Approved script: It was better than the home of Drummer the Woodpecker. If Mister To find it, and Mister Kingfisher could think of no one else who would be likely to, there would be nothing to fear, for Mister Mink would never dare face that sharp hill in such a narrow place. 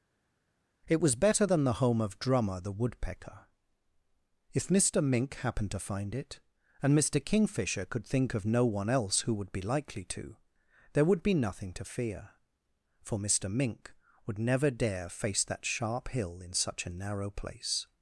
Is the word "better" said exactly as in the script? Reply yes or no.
yes